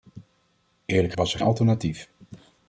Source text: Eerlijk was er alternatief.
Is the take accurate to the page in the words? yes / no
yes